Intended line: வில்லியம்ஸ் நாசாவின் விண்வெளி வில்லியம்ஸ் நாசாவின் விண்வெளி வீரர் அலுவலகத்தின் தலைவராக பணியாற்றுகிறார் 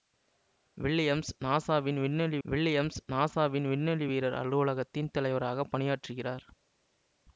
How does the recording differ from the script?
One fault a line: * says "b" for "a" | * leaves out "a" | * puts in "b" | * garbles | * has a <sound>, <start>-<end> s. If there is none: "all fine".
all fine